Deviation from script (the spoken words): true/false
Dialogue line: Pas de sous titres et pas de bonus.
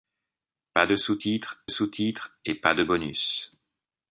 true